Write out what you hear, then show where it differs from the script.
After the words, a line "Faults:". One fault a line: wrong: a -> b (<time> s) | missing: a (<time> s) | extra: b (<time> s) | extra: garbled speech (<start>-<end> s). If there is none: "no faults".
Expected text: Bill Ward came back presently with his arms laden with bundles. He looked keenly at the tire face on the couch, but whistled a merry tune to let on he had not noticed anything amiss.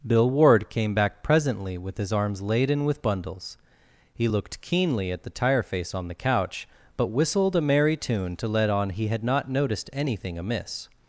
Bill Ward came back presently with his arms laden with bundles. He looked keenly at the tire face on the couch, but whistled a merry tune to let on he had not noticed anything amiss.
Faults:
no faults